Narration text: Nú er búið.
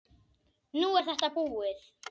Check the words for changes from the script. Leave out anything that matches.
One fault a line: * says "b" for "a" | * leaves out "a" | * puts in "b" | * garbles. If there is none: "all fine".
* puts in "þetta"